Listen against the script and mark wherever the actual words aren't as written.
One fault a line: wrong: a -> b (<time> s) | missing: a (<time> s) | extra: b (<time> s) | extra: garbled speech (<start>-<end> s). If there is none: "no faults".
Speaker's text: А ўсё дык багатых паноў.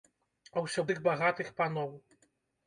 no faults